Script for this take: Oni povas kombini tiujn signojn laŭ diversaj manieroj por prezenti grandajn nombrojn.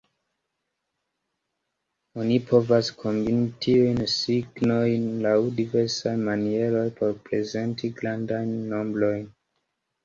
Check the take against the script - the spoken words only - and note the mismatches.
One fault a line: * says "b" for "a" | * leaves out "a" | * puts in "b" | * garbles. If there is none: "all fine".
all fine